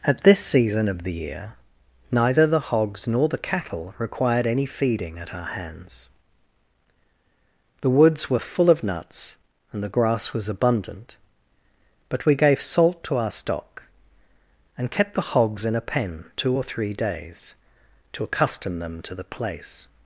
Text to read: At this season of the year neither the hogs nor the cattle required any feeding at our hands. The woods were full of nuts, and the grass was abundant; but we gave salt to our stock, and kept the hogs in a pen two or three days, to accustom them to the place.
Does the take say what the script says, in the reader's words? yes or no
yes